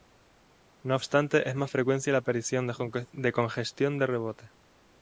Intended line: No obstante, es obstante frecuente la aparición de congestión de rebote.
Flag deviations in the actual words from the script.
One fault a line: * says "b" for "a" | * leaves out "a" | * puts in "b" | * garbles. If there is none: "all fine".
* says "más" for "obstante"